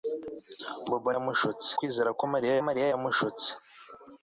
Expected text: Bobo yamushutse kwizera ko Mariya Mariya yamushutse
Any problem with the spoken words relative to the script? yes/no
no